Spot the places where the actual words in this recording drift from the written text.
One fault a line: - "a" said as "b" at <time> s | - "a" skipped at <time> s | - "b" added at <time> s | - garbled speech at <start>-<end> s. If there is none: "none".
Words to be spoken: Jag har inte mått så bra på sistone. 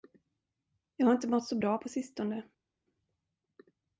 none